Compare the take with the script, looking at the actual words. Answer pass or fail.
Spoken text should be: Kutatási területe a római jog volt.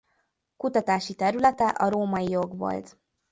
pass